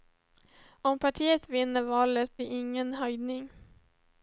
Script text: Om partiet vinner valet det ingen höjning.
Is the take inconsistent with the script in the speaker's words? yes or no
no